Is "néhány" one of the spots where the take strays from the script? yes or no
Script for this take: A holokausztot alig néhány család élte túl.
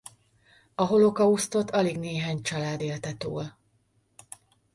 no